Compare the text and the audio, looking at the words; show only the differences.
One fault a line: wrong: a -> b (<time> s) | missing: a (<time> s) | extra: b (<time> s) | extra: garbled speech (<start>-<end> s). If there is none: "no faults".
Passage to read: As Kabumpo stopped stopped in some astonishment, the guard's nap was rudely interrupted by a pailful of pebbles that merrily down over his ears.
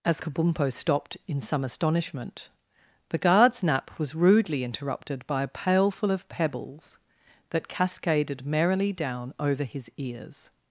missing: stopped (1.2 s)
extra: cascaded (7.7 s)